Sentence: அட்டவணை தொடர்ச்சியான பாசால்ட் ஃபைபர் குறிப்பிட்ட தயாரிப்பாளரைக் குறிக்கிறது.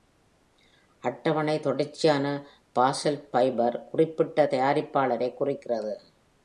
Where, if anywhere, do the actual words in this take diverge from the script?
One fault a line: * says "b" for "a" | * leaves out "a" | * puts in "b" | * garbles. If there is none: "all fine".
all fine